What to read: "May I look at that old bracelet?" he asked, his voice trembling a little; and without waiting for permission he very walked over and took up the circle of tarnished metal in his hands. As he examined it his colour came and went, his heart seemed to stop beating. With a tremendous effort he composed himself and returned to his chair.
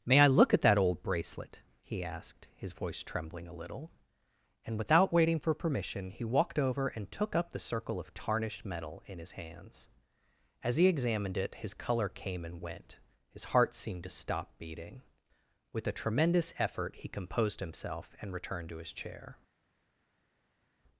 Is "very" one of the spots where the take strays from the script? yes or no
yes